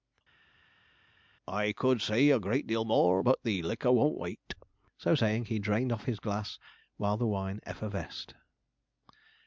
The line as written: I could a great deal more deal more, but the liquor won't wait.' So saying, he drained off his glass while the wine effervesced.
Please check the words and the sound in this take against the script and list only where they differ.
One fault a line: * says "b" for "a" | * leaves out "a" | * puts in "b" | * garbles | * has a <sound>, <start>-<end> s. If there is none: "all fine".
* puts in "say"
* leaves out "deal more"